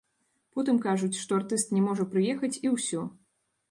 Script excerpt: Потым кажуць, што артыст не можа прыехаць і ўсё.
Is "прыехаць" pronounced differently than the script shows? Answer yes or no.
no